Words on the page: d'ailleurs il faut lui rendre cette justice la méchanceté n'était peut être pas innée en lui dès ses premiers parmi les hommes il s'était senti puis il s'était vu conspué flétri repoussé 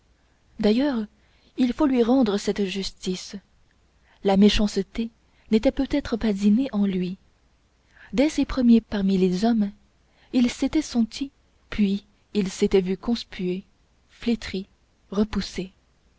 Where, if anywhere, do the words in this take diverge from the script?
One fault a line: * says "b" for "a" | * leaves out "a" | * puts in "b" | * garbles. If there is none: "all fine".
all fine